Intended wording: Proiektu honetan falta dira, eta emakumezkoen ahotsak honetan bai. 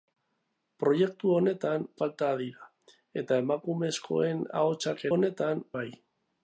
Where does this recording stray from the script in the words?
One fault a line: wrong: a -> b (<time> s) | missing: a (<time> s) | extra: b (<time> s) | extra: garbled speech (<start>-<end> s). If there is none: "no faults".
no faults